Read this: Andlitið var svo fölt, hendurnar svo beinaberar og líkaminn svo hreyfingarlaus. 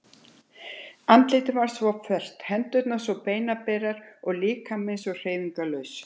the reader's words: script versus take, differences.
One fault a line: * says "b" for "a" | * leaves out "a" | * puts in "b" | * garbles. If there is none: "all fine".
all fine